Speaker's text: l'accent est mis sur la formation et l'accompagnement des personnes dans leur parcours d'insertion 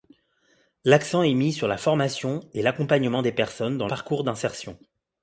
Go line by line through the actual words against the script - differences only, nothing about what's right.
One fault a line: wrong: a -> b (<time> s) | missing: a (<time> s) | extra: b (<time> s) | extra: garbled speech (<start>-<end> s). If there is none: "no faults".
missing: leur (3.9 s)